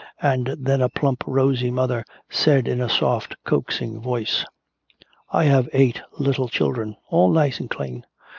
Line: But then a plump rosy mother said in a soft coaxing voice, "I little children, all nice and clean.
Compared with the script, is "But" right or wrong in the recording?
wrong